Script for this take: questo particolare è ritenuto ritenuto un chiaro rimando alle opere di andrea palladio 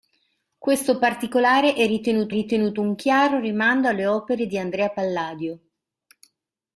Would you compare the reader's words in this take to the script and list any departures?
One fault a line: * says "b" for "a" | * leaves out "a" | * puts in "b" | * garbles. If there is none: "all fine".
all fine